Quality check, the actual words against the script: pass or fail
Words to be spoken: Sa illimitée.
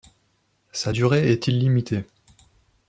fail